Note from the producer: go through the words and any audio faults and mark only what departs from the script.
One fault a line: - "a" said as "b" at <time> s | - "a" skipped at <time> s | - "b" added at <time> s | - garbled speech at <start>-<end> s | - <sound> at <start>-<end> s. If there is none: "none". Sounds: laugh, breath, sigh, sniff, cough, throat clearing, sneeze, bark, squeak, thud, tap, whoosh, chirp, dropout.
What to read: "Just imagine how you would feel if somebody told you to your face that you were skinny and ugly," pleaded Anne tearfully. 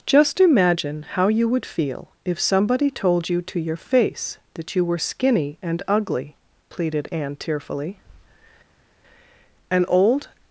- "An old" added at 9.7 s